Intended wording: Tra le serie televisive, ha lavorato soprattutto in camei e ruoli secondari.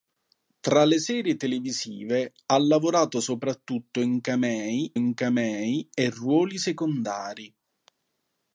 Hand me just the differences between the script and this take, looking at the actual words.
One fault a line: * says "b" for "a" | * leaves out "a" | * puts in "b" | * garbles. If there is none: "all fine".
* puts in "in camei"